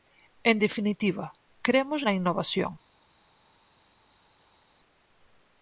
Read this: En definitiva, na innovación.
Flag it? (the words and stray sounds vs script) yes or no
yes